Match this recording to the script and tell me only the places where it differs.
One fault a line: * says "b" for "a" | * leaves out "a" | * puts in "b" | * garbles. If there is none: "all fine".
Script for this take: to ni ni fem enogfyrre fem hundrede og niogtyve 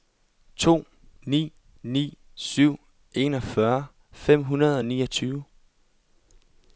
* says "syv" for "fem"